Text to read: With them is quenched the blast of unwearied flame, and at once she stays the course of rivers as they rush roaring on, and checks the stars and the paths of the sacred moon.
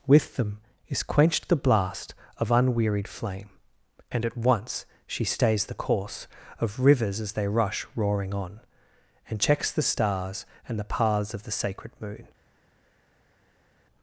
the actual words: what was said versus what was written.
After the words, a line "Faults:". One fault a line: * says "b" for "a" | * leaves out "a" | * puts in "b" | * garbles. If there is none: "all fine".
With them is quenched the blast of unwearied flame, and at once she stays the course of rivers as they rush roaring on, and checks the stars and the paths of the sacred moon.
Faults:
all fine